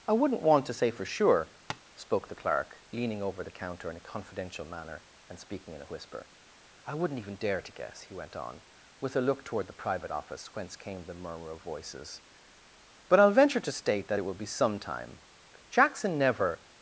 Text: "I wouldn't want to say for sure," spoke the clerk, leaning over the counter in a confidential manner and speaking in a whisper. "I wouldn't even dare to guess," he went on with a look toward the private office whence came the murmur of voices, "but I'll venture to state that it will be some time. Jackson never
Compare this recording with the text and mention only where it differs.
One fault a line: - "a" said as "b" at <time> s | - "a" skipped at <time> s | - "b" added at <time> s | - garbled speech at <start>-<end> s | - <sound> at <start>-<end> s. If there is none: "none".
- tap at 1.7-1.8 s